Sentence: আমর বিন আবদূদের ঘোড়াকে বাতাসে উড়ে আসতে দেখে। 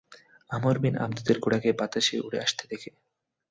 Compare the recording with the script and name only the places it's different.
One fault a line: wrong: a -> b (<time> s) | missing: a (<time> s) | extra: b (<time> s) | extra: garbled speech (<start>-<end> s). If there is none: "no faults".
no faults